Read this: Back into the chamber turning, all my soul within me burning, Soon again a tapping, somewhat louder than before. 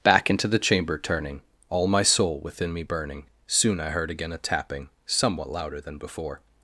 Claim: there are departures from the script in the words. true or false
true